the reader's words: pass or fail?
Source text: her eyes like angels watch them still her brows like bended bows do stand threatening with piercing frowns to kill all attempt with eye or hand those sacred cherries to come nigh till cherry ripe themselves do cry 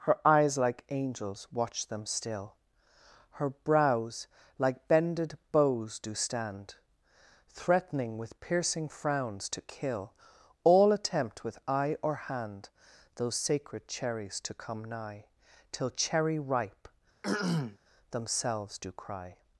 pass